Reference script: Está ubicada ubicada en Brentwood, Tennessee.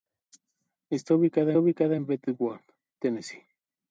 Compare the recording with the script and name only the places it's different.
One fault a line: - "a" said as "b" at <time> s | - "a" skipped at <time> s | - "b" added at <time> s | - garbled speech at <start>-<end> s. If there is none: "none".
none